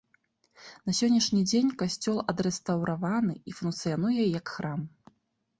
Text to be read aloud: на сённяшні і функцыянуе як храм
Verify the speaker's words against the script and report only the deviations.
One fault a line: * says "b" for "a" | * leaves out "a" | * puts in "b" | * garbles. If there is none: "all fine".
* puts in "дзень касцёл адрэстаўраваны"